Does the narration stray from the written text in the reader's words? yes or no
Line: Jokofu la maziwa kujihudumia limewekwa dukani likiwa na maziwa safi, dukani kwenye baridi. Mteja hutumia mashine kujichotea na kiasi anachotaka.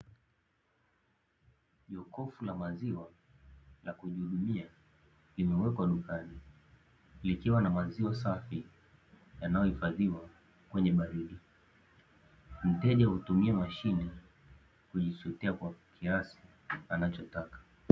yes